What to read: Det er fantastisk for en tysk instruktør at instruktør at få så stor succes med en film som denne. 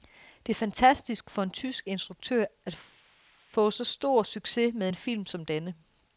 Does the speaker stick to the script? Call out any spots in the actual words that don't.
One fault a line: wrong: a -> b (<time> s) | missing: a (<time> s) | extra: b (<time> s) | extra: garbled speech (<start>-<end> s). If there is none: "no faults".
missing: instruktør at (2.8 s)